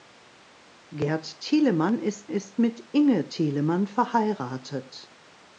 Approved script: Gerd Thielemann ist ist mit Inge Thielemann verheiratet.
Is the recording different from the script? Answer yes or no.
no